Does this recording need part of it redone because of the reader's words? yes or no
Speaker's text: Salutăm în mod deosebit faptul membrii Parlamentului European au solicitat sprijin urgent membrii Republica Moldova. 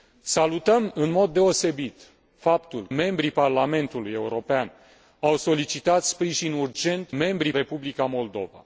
no